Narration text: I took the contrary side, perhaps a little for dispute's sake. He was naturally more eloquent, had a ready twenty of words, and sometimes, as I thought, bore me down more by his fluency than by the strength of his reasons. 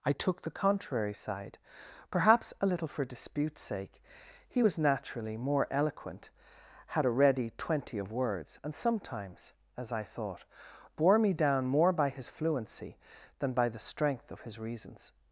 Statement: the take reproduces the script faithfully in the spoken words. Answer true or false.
true